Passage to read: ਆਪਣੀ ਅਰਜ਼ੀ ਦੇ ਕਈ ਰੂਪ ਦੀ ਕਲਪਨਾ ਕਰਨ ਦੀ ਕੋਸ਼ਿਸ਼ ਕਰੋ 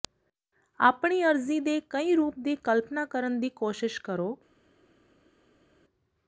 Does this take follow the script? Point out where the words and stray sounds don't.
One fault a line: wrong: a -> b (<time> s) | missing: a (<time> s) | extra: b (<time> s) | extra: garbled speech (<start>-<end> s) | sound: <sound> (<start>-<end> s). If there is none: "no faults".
no faults